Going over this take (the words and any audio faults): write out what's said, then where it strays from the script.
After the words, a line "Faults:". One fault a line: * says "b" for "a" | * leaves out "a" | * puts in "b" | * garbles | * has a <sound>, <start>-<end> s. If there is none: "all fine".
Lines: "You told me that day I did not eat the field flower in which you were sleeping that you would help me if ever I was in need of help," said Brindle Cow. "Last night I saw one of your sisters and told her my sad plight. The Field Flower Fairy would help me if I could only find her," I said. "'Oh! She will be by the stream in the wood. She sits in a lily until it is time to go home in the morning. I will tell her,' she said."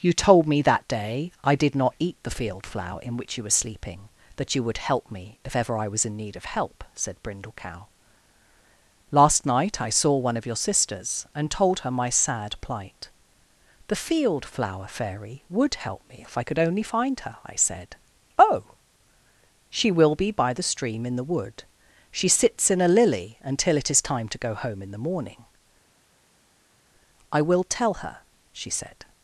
"You told me that day I did not eat the field flower in which you were sleeping that you would help me if ever I was in need of help," said Brindle Cow. "Last night I saw one of your sisters and told her my sad plight. The Field Flower Fairy would help me if I could only find her," I said. "'Oh! She will be by the stream in the wood. She sits in a lily until it is time to go home in the morning. I will tell her,' she said."
Faults:
all fine